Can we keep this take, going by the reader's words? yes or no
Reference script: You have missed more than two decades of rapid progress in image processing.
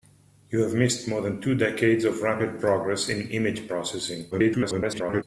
no